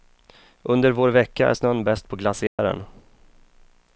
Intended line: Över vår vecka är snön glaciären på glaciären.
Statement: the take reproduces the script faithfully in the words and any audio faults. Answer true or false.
false